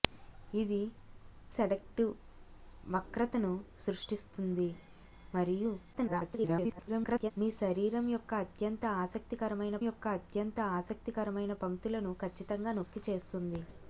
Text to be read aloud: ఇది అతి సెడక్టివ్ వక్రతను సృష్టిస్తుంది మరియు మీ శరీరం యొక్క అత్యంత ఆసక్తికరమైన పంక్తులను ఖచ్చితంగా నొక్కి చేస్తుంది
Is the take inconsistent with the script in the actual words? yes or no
yes